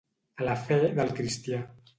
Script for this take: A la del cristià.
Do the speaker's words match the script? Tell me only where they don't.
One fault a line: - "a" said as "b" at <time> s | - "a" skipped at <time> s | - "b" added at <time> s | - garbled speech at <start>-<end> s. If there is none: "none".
- "fe" added at 0.7 s